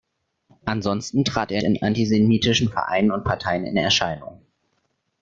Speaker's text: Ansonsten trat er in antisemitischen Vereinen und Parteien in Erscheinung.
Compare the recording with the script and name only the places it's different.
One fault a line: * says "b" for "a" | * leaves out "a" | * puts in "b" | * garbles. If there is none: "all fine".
all fine